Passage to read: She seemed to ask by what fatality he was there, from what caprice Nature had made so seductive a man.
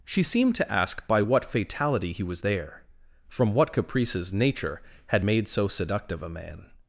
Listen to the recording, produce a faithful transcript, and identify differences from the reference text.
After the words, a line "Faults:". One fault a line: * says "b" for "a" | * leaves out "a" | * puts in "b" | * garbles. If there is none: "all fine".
She seemed to ask by what fatality he was there, from what caprices Nature had made so seductive a man.
Faults:
* says "caprices" for "caprice"